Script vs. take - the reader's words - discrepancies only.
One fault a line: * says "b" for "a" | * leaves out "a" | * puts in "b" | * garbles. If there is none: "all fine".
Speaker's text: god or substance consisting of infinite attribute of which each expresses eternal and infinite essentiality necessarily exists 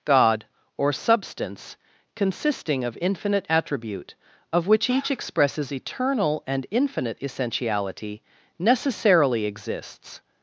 all fine